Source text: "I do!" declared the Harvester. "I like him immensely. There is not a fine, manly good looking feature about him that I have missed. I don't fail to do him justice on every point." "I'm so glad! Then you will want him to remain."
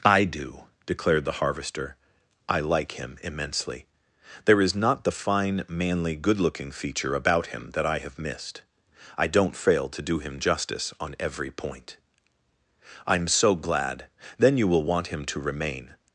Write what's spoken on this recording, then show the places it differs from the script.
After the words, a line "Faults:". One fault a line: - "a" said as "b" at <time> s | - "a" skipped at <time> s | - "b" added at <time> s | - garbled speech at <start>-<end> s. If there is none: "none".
"I do!" declared the Harvester. "I like him immensely. There is not the fine, manly good looking feature about him that I have missed. I don't fail to do him justice on every point." "I'm so glad! Then you will want him to remain."
Faults:
- "a" said as "the" at 5.0 s